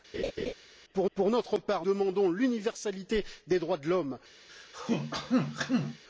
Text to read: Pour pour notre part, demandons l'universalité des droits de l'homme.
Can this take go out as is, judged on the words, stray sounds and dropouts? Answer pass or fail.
fail